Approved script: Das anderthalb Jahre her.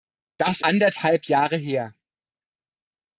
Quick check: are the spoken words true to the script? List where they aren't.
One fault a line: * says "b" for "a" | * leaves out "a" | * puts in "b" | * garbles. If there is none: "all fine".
all fine